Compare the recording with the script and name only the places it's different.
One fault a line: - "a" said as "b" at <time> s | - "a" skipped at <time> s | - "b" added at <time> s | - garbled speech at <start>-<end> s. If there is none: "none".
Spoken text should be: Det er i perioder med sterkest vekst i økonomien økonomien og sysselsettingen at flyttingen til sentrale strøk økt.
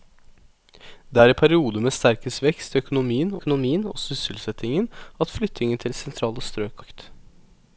none